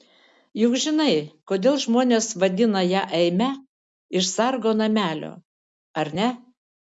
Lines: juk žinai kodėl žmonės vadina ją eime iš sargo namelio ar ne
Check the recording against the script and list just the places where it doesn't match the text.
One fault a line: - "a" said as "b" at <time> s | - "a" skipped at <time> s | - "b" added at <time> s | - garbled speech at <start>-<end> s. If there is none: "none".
none